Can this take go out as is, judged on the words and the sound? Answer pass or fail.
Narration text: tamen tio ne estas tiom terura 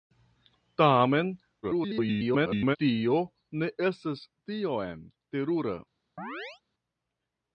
fail